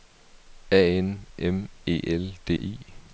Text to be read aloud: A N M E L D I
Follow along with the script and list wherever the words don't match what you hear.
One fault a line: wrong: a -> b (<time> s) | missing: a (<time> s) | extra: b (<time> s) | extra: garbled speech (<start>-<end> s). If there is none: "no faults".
no faults